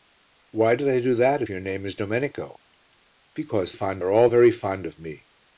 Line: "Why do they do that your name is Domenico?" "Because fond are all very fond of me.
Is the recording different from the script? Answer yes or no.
no